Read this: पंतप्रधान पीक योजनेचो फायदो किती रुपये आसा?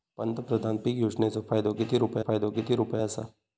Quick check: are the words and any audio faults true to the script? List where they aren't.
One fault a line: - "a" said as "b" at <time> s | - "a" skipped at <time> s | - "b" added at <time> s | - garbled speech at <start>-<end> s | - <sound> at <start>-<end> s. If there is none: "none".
- "फायदो किती रुपये" added at 2.2 s